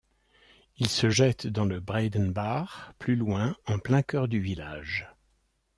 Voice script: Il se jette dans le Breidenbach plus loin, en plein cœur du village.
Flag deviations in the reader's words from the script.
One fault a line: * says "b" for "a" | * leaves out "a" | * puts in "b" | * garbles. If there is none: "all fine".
all fine